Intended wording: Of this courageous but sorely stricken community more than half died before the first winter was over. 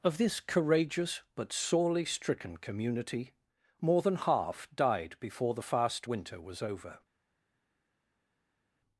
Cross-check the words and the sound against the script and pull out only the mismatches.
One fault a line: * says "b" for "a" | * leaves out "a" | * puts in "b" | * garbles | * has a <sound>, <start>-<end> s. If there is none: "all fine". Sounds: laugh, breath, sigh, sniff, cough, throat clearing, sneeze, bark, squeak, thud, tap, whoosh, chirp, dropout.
* says "fast" for "first"